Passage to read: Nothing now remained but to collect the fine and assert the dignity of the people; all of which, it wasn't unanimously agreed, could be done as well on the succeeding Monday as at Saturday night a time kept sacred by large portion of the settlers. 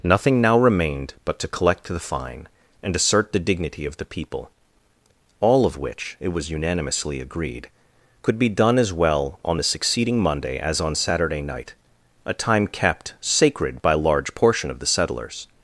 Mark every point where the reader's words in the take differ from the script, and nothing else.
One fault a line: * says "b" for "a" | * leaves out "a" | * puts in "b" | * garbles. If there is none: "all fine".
* says "was" for "wasn't"
* says "on" for "at"